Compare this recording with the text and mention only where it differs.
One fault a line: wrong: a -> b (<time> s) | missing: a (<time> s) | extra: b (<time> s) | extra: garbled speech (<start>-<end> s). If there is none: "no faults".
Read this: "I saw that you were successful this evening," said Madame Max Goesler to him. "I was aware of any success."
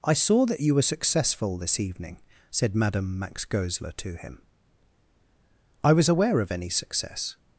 no faults